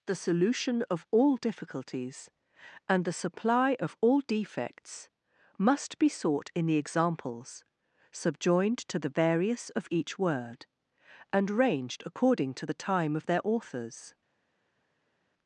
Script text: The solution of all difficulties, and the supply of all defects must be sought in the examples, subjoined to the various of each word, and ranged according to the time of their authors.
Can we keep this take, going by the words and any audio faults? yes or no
yes